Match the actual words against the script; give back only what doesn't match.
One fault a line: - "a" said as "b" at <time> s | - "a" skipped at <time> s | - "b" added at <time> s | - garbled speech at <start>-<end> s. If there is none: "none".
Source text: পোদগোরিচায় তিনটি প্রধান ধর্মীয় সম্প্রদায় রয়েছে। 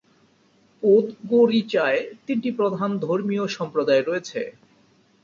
none